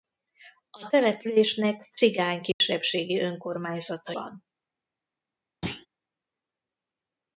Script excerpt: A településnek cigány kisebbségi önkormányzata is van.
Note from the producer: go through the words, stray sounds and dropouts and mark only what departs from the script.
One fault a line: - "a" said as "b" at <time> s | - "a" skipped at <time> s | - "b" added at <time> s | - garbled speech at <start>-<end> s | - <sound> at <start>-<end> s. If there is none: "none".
- dropout at 2.5-2.6 s
- "is" skipped at 4.1 s
- thud at 5.6-5.9 s